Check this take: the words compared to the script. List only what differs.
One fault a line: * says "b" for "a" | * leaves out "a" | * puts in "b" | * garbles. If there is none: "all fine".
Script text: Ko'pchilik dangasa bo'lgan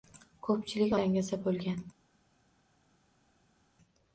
all fine